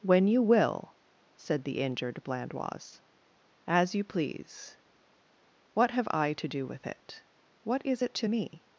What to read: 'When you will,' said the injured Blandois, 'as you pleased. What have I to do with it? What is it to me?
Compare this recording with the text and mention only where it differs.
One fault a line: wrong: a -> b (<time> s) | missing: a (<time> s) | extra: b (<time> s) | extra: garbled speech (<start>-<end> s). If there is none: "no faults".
wrong: pleased -> please (4.0 s)